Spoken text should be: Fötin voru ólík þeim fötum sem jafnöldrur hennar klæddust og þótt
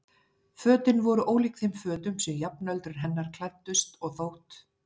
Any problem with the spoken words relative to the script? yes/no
no